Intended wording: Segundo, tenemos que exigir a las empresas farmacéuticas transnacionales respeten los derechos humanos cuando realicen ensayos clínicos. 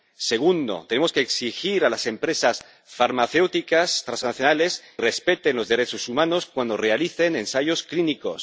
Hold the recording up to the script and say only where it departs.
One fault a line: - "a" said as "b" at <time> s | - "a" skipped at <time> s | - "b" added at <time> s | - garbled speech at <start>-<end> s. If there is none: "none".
none